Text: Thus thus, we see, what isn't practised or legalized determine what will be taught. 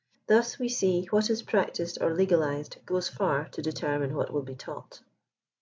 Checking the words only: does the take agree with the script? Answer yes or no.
no